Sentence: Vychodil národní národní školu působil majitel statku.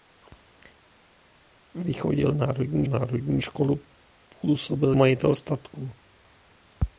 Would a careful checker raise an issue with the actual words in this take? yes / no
no